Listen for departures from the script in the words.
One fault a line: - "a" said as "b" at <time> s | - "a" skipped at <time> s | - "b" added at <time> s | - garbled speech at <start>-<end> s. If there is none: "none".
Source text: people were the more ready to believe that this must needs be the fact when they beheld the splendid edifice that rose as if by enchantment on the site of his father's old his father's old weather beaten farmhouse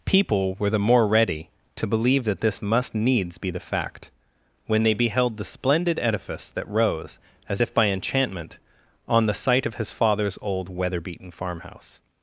- "his father's old" skipped at 10.7 s